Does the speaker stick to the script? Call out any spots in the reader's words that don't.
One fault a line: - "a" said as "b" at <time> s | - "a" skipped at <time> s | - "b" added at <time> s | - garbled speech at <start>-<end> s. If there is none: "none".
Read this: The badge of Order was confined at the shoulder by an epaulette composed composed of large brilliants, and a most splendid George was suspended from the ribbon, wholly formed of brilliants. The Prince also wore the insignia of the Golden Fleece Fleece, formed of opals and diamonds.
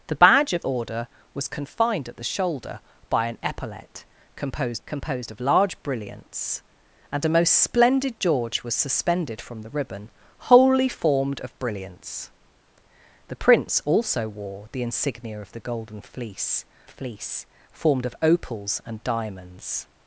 none